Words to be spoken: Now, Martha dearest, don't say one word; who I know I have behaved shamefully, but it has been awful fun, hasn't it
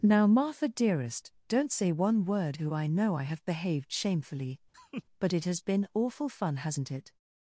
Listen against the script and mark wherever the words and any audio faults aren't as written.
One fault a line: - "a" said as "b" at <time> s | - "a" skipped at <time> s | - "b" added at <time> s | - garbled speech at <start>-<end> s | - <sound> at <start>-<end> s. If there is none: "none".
- laugh at 4.7-5.0 s